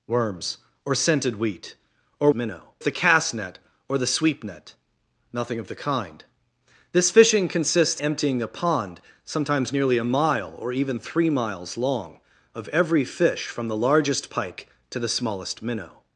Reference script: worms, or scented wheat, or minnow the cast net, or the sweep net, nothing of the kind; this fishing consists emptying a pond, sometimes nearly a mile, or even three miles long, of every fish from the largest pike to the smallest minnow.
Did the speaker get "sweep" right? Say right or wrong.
right